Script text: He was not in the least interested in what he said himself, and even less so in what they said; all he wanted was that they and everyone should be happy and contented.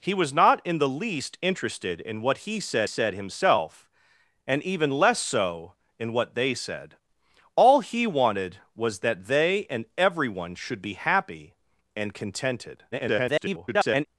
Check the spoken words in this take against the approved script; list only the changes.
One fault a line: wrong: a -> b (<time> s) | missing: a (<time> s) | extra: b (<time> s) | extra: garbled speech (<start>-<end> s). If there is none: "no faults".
extra: said (2.8 s)
extra: garbled speech (12.9-14.1 s)